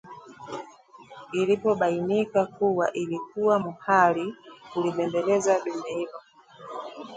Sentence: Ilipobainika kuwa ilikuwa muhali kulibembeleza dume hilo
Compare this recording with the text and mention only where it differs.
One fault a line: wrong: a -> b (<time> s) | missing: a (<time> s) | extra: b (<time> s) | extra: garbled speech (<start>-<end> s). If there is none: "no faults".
no faults